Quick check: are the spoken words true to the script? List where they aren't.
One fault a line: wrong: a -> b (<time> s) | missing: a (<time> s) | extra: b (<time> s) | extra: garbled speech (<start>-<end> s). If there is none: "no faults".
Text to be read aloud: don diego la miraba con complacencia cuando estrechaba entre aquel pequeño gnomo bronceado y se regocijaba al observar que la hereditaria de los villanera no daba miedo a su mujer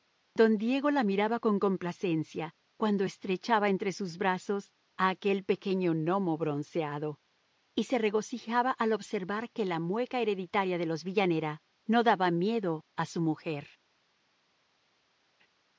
extra: sus brazos a (3.9 s)
extra: mueca (9.8 s)